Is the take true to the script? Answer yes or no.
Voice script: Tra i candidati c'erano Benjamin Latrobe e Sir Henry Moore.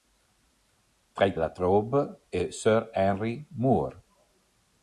no